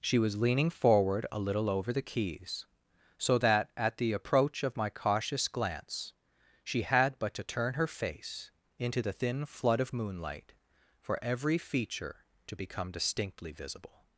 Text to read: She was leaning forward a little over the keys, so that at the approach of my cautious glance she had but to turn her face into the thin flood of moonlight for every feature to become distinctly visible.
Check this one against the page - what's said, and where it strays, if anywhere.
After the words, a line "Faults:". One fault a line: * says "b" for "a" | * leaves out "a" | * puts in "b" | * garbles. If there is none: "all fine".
She was leaning forward a little over the keys, so that at the approach of my cautious glance she had but to turn her face into the thin flood of moonlight for every feature to become distinctly visible.
Faults:
all fine